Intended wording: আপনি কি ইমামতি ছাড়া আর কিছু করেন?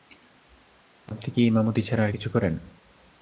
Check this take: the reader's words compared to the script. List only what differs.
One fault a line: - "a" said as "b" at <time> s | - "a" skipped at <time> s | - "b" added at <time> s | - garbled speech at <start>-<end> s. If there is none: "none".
none